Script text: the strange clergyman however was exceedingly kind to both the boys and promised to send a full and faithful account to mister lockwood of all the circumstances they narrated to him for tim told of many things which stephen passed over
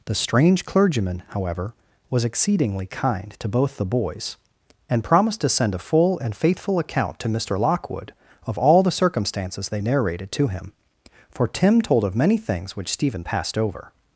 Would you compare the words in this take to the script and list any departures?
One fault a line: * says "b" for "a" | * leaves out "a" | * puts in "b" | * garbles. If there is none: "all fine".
all fine